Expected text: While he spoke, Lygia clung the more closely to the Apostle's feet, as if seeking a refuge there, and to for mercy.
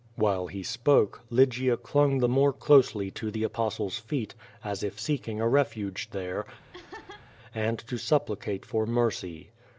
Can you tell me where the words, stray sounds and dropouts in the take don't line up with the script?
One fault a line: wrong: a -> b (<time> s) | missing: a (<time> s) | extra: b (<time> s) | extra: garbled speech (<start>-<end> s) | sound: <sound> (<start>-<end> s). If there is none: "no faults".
sound: laugh (6.7-7.3 s)
extra: supplicate (8.0 s)